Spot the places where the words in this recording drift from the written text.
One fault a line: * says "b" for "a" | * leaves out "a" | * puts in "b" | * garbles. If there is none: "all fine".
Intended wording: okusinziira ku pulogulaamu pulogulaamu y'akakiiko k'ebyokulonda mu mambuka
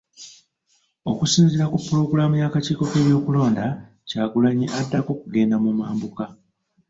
* leaves out "pulogulaamu"
* puts in "kyagulanyi addako kugenda"